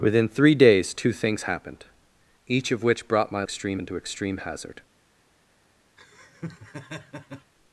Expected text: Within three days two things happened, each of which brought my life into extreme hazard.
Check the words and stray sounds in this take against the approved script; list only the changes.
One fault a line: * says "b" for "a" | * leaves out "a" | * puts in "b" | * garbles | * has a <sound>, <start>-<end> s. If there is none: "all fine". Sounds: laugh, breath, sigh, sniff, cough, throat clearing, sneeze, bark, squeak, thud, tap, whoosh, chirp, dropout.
* says "extreme" for "life"
* has a laugh, 6.0-7.5 s